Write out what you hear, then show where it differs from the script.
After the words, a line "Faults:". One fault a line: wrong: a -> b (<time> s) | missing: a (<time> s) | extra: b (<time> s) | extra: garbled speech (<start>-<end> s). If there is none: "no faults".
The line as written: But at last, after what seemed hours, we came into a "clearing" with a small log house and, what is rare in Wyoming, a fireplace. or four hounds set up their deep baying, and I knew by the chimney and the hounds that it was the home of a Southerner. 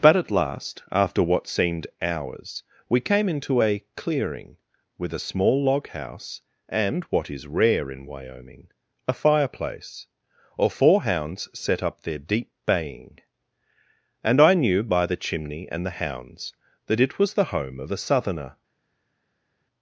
But at last, after what seemed hours, we came into a "clearing" with a small log house and, what is rare in Wyoming, a fireplace. or four hounds set up their deep baying, and I knew by the chimney and the hounds that it was the home of a Southerner.
Faults:
no faults